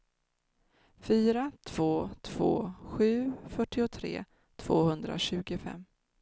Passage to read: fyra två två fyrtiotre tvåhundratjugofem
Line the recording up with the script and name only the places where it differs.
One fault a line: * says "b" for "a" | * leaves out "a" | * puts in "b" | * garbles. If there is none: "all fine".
* puts in "sju"